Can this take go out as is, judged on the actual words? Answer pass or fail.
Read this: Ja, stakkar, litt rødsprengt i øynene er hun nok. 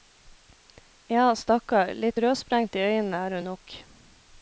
pass